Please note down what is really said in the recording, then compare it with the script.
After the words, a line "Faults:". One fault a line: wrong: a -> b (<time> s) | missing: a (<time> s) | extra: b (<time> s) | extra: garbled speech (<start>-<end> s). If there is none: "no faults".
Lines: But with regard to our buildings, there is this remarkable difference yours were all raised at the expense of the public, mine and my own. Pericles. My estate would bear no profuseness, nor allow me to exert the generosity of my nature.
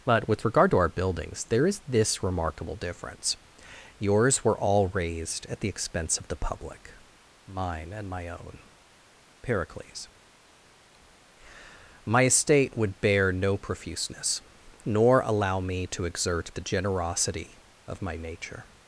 But with regard to our buildings, there is this remarkable difference yours were all raised at the expense of the public, mine and my own. Pericles. My estate would bear no profuseness, nor allow me to exert the generosity of my nature.
Faults:
no faults